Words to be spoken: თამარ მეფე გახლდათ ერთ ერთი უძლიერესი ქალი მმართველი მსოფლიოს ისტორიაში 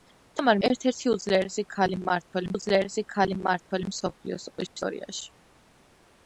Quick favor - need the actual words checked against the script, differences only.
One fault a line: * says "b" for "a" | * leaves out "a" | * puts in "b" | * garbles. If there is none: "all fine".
* says "ერთ ერთი უძლიერესი ქალი მმართველი" for "მეფე გახლდათ ერთ ერთი"